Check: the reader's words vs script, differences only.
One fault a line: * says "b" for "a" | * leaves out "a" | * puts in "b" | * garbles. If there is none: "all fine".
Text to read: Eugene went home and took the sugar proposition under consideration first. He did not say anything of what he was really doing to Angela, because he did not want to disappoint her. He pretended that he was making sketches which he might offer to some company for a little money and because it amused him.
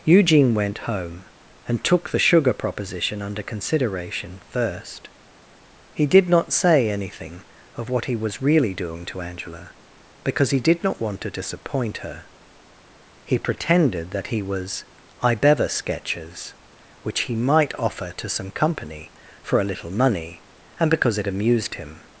* says "ibever" for "making"